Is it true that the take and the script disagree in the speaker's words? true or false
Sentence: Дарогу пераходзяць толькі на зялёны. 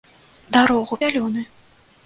true